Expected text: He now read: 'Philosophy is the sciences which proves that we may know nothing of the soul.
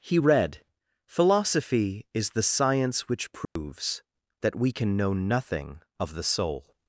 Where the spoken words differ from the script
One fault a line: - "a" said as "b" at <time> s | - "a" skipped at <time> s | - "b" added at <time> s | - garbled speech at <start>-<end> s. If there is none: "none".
- "now" skipped at 0.2 s
- "sciences" said as "science" at 2.5 s
- "may" said as "can" at 4.7 s